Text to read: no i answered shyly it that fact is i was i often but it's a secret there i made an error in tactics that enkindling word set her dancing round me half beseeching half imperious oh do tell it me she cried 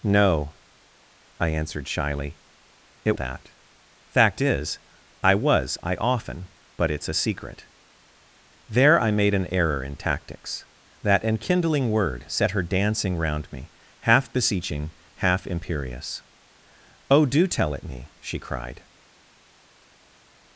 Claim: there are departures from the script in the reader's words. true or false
false